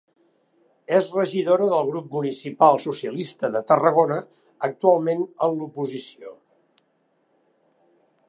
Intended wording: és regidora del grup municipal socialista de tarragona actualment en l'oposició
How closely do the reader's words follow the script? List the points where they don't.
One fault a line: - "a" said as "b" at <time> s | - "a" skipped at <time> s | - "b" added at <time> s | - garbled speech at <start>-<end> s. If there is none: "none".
none